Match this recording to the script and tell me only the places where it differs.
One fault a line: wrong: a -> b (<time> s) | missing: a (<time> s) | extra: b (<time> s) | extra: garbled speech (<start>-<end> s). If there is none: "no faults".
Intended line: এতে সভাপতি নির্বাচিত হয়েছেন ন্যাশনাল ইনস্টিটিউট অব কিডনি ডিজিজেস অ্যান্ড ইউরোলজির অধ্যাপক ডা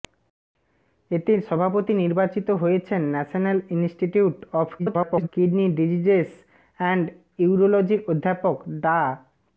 extra: garbled speech (4.8-5.3 s)